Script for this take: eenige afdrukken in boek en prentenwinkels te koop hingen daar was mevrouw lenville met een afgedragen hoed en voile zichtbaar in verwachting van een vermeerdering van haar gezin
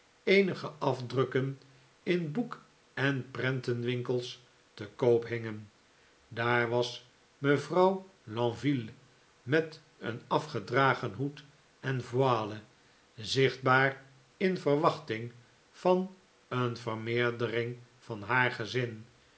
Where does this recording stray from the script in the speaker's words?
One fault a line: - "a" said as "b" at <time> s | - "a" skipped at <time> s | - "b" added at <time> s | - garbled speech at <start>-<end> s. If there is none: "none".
none